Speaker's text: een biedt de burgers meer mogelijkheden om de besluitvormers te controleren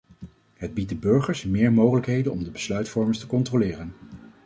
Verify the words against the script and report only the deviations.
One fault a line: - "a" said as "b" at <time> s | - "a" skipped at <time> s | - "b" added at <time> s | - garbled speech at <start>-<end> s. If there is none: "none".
- "een" said as "het" at 0.5 s